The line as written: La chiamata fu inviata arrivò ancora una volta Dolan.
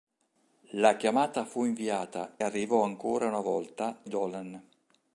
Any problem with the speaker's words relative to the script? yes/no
no